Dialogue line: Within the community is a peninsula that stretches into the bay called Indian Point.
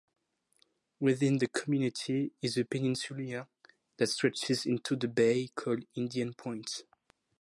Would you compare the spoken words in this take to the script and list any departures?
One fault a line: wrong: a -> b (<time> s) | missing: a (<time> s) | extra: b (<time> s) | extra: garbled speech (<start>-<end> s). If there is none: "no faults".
no faults